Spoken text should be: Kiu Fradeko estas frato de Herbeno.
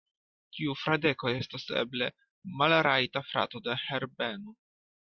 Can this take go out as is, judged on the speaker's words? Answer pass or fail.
fail